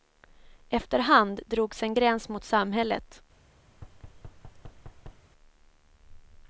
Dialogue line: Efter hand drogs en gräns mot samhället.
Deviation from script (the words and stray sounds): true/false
true